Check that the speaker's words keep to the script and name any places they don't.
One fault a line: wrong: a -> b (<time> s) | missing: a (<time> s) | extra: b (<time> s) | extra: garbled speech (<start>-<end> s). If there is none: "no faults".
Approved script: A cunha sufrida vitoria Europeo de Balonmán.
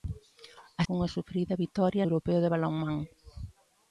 no faults